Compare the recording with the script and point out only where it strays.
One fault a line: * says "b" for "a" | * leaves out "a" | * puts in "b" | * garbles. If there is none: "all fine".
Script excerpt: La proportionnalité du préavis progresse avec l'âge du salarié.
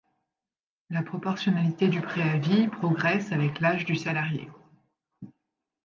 all fine